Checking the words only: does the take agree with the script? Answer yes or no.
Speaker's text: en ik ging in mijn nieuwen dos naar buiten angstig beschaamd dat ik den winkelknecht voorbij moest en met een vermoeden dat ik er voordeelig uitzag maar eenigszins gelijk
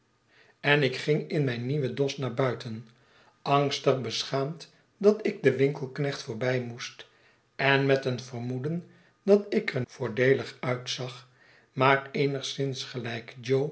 yes